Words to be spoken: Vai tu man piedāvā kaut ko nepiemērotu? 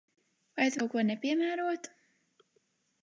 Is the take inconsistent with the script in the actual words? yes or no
yes